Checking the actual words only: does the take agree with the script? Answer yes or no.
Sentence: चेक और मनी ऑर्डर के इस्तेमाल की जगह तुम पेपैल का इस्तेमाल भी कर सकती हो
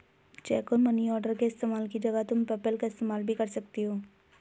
yes